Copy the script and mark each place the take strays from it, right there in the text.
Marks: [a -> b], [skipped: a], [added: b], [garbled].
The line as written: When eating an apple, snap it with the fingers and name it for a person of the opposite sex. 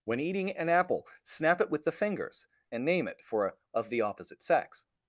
When eating an apple, snap it with the fingers and name it for a [skipped: person] of the opposite sex.